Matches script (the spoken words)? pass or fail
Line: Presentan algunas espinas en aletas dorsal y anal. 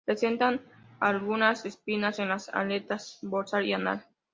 fail